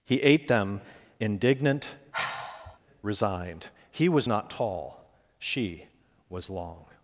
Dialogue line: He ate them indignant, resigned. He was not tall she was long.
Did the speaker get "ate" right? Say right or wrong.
right